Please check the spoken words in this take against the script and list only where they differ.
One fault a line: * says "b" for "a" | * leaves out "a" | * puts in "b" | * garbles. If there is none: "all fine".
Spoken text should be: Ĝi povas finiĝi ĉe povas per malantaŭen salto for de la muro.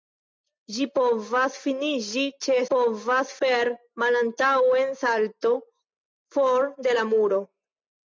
all fine